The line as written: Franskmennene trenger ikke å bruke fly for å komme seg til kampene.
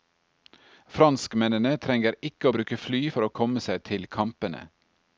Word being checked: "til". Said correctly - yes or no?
yes